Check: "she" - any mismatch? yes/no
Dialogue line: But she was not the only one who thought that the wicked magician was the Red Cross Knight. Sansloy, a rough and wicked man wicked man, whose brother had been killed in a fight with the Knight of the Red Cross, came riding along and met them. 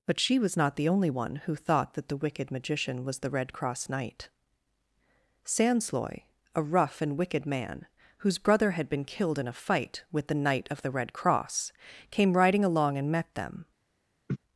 no